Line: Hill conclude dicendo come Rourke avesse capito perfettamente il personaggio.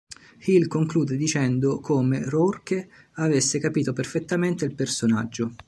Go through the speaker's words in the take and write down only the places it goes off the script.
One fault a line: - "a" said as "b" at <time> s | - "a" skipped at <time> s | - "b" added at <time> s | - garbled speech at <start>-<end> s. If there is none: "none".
none